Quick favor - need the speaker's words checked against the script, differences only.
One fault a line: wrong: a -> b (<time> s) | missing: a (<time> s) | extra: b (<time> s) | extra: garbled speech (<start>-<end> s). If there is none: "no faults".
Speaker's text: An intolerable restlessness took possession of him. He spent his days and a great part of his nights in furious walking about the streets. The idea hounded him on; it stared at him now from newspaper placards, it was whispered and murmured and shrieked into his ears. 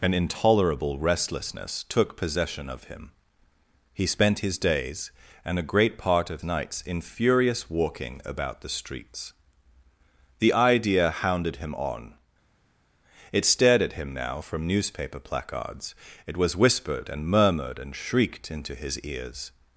missing: his (6.4 s)